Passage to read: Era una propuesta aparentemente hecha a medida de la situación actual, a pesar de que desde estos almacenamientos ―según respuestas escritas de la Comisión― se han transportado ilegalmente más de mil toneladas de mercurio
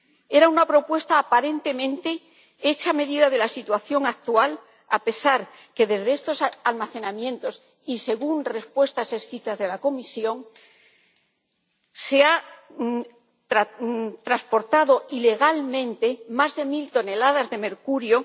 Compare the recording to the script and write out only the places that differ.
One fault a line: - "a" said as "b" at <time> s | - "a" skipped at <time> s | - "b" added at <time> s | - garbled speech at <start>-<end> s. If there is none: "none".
- "y" added at 7.9 s